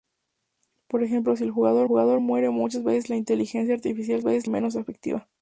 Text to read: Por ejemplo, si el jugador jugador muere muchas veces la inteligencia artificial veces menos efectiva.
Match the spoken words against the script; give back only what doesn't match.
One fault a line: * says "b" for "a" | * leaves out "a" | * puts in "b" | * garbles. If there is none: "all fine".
all fine